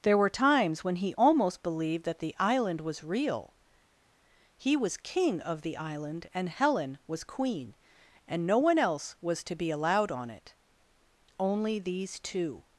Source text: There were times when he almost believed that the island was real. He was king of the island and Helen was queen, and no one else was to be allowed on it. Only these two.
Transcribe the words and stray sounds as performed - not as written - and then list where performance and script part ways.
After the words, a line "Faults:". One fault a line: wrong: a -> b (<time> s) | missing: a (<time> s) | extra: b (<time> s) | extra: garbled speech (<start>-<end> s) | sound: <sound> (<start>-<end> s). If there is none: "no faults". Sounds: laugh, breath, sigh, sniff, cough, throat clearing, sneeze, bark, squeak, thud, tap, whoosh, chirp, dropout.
There were times when he almost believed that the island was real. He was king of the island and Helen was queen, and no one else was to be allowed on it. Only these two.
Faults:
no faults